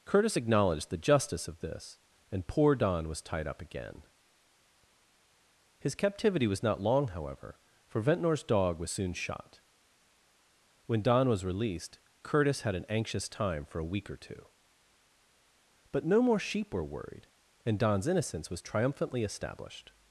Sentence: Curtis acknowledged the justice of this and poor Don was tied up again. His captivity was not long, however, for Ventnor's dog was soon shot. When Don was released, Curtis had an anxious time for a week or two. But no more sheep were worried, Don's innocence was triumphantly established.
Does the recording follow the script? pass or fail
fail